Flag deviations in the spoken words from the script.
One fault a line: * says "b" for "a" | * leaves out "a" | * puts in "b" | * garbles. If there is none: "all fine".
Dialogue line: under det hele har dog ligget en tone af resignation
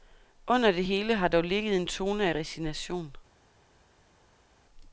all fine